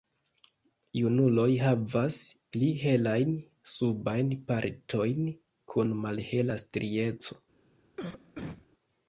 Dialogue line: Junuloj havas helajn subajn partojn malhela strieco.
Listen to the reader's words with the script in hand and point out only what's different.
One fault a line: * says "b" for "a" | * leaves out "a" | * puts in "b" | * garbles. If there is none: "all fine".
* puts in "pli"
* puts in "kun"